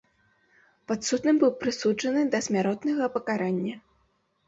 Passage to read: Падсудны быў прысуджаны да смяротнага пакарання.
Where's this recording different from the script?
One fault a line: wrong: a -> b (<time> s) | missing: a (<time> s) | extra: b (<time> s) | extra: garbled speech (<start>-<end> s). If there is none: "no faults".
no faults